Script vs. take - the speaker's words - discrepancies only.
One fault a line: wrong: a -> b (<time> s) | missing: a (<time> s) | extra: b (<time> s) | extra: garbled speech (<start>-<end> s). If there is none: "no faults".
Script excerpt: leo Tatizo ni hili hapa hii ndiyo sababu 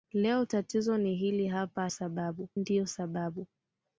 wrong: hii -> sababu (1.9 s)